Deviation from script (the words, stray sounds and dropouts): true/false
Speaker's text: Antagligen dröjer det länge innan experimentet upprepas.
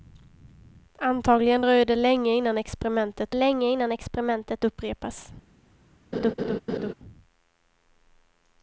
true